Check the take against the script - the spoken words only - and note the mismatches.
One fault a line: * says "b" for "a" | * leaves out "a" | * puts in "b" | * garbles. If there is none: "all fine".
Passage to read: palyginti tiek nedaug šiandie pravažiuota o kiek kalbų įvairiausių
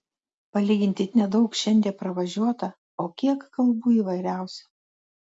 * leaves out "tiek"